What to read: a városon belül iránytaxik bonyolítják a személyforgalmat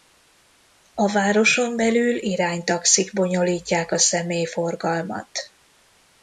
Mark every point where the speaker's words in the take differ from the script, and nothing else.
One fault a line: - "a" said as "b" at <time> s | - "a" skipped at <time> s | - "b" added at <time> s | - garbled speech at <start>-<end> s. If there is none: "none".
none